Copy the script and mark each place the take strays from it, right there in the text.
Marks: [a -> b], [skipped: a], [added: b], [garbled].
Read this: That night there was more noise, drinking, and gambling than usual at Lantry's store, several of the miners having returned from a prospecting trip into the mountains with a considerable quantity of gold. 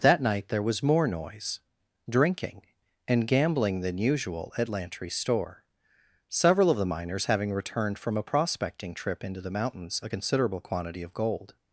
That night there was more noise, drinking, and gambling than usual at Lantry's store, several of the miners having returned from a prospecting trip into the mountains [skipped: with] a considerable quantity of gold.